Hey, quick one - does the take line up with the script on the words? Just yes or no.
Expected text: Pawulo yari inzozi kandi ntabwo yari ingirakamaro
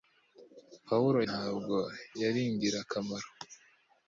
no